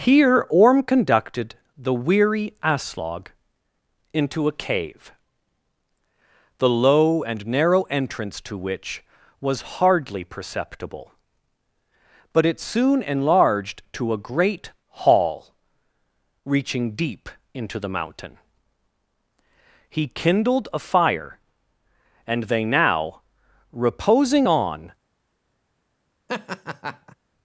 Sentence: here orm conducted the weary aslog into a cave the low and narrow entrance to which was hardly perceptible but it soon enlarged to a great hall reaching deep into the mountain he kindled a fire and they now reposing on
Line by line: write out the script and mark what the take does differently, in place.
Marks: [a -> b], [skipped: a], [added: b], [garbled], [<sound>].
here orm conducted the weary aslog into a cave the low and narrow entrance to which was hardly perceptible but it soon enlarged to a great hall reaching deep into the mountain he kindled a fire and they now reposing on [laugh]